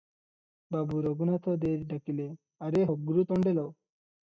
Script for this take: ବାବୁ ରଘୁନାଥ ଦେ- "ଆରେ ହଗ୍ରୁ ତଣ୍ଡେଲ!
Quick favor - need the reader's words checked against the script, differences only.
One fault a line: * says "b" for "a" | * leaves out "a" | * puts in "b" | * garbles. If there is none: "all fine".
* puts in "ଡାକିଲେ"